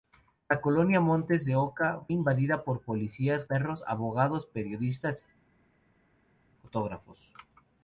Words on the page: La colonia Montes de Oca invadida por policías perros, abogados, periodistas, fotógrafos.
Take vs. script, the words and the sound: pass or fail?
pass